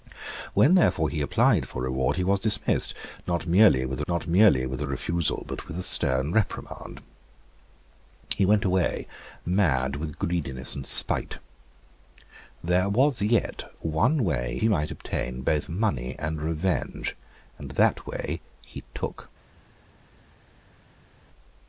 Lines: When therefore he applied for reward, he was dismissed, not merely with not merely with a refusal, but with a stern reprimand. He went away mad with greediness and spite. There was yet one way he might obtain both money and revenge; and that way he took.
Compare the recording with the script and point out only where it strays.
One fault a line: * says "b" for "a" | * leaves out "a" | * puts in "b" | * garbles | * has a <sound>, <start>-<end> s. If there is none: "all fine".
all fine